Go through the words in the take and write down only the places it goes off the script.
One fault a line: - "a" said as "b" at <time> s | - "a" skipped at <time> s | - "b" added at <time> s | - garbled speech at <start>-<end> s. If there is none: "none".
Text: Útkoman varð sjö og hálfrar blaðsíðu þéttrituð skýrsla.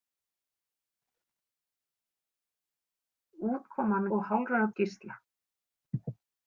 - "varð sjö" skipped at 4.1 s
- "blaðsíðu þéttrituð" skipped at 4.7 s